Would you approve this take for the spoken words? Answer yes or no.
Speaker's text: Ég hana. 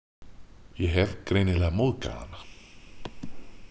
no